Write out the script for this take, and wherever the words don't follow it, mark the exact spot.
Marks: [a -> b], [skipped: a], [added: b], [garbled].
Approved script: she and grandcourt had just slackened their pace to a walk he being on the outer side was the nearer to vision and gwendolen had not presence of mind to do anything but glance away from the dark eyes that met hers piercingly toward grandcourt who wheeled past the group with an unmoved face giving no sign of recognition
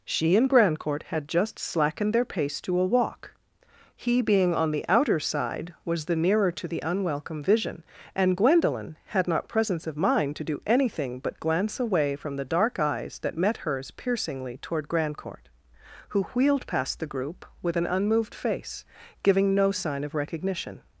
she and grandcourt had just slackened their pace to a walk he being on the outer side was the nearer to [added: the unwelcome] vision and gwendolen had not presence of mind to do anything but glance away from the dark eyes that met hers piercingly toward grandcourt who wheeled past the group with an unmoved face giving no sign of recognition